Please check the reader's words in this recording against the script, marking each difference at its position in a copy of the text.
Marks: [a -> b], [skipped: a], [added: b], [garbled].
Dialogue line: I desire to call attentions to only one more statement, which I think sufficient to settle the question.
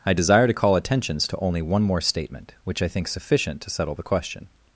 I desire to call attentions to only one more statement, which I think sufficient to settle the question.